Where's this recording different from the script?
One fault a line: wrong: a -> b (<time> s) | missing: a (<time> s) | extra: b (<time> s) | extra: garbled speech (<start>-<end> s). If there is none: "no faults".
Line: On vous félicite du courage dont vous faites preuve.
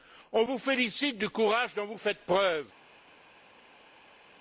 no faults